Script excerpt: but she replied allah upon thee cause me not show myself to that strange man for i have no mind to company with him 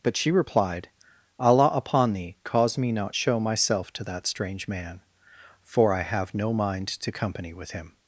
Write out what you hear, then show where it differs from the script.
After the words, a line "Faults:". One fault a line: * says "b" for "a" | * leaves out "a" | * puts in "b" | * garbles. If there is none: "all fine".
but she replied allah upon thee cause me not show myself to that strange man for i have no mind to company with him
Faults:
all fine